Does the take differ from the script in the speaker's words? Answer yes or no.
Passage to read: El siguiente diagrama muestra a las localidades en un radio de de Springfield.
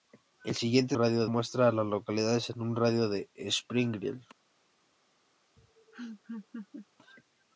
yes